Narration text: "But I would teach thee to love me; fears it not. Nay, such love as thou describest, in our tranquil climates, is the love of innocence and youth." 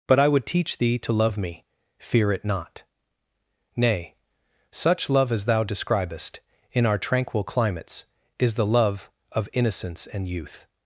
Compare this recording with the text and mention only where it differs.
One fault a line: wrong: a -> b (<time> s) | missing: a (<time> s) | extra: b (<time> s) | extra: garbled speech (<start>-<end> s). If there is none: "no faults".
wrong: fears -> fear (2.0 s)